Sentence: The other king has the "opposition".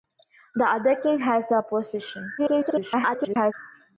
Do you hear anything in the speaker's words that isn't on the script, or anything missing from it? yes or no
yes